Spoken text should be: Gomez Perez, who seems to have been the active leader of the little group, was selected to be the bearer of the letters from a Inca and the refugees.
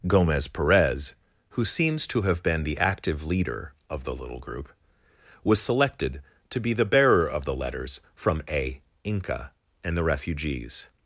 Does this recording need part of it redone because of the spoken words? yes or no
no